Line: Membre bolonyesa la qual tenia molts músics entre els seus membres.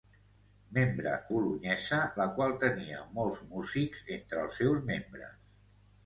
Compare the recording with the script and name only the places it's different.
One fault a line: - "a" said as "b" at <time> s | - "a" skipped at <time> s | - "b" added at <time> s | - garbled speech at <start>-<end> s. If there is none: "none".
none